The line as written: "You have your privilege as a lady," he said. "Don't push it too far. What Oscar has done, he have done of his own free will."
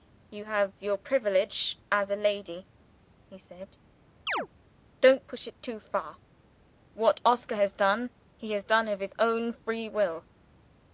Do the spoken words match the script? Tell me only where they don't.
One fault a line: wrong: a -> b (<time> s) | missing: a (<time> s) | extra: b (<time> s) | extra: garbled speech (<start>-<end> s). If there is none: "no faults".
wrong: have -> has (8.5 s)